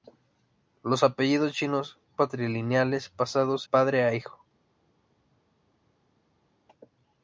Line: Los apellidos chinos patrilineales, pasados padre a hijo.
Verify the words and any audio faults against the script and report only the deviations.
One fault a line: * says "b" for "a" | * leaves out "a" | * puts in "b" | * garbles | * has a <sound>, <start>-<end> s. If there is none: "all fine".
all fine